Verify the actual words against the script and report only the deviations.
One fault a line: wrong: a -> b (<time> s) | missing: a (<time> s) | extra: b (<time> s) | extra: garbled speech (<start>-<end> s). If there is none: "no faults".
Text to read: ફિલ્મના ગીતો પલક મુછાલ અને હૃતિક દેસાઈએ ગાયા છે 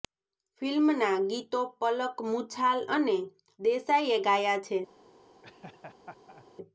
missing: હૃતિક (3.2 s)